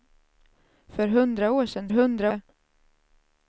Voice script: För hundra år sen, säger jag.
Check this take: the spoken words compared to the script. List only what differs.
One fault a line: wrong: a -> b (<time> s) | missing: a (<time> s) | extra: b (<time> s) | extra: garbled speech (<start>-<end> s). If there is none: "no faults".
wrong: säger -> hundra (1.9 s)